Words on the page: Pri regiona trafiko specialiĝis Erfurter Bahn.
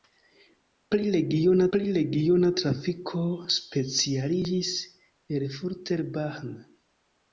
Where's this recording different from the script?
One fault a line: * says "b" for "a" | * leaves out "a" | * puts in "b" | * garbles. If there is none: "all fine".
* puts in "pri regiona"